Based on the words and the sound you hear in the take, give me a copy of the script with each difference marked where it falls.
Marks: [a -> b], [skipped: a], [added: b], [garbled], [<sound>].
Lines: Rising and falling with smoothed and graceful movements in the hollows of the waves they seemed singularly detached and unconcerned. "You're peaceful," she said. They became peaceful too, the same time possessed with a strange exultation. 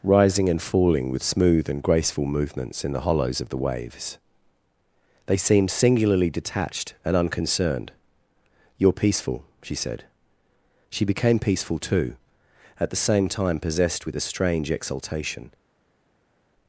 Rising and falling with [smoothed -> smooth] and graceful movements in the hollows of the waves they seemed singularly detached and unconcerned. "You're peaceful," she said. [They -> She] became peaceful too, [added: at] the same time possessed with a strange exultation.